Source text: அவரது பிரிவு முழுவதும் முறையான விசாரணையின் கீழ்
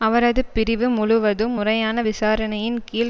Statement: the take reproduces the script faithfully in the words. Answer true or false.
true